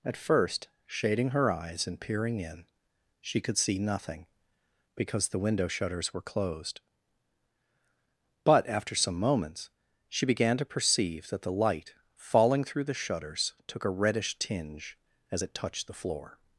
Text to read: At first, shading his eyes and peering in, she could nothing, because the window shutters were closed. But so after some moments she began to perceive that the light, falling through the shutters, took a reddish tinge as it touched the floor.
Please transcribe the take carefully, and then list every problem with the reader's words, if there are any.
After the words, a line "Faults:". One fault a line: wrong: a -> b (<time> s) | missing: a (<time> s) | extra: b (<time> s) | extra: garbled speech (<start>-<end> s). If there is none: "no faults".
At first, shading her eyes and peering in, she could see nothing, because the window shutters were closed. But after some moments she began to perceive that the light, falling through the shutters, took a reddish tinge as it touched the floor.
Faults:
wrong: his -> her (1.3 s)
extra: see (3.6 s)
missing: so (8.7 s)